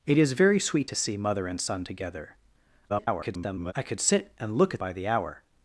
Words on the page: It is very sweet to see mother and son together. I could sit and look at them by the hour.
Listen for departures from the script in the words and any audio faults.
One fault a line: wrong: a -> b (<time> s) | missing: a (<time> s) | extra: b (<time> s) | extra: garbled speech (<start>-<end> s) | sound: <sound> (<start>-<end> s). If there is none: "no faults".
extra: garbled speech (2.9-3.7 s)
missing: them (4.8 s)